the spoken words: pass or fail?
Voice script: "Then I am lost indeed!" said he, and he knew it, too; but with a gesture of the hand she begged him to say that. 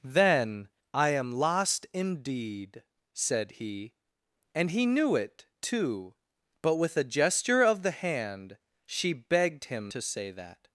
pass